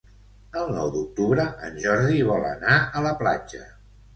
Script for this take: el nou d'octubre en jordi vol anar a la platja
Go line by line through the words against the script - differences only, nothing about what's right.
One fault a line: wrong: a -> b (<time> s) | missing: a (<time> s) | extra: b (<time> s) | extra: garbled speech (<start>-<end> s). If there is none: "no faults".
no faults